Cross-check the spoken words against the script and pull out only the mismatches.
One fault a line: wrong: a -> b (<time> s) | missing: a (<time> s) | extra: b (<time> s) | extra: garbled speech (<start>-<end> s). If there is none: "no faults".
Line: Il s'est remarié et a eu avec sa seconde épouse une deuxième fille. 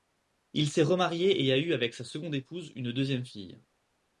no faults